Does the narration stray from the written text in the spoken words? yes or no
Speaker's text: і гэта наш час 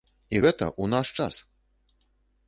yes